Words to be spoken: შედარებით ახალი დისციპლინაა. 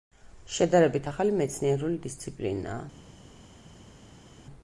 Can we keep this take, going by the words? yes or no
no